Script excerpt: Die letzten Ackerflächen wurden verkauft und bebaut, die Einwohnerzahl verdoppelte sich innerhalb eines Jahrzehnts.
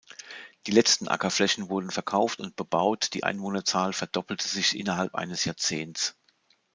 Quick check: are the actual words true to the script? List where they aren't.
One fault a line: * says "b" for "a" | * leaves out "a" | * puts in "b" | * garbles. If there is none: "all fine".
all fine